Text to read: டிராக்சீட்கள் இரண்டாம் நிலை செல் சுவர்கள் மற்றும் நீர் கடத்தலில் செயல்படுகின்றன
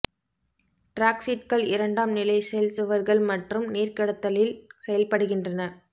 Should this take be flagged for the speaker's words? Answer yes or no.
no